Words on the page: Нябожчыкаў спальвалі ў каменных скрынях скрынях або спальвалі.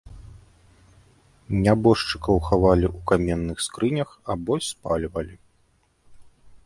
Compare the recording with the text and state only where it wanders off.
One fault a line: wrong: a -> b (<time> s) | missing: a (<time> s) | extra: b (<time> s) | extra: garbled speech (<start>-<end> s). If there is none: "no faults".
wrong: спальвалі -> хавалі (2.5 s)
missing: скрынях (4.1 s)